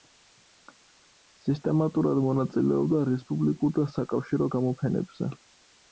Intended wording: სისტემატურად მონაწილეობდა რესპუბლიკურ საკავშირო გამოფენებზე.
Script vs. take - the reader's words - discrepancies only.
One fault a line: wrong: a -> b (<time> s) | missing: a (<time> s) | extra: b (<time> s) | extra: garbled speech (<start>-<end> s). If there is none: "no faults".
extra: და (3.8 s)